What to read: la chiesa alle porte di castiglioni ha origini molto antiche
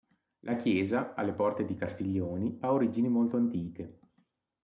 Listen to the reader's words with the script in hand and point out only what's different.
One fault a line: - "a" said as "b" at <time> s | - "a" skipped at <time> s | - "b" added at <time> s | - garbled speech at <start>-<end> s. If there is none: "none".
none